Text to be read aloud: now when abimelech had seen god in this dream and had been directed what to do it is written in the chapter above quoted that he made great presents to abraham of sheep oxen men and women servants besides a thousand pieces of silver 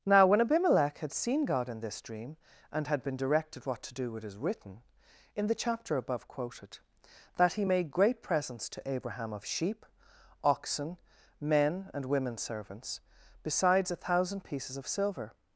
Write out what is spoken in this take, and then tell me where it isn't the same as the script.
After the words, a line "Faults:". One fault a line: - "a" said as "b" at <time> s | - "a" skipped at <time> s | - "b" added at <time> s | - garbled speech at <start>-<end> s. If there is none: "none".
now when abimelech had seen god in this dream and had been directed what to do it is written in the chapter above quoted that he made great presents to abraham of sheep oxen men and women servants besides a thousand pieces of silver
Faults:
none